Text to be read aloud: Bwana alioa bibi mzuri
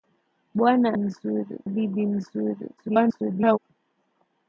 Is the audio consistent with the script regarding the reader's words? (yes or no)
no